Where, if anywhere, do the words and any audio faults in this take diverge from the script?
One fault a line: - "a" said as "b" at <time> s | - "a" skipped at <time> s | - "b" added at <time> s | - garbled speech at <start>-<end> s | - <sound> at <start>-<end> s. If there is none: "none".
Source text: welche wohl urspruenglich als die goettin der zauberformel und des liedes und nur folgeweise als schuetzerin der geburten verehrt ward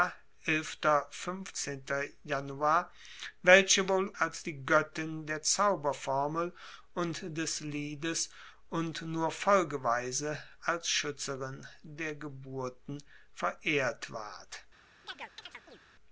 - "urspruenglich" skipped at 4.1 s
- chirp at 15.0-15.8 s